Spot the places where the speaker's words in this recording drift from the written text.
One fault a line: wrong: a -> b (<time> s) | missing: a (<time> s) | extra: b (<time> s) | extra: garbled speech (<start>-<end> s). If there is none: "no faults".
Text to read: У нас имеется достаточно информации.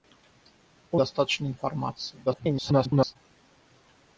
missing: нас имеется (1.0 s)
extra: garbled speech (2.3-3.2 s)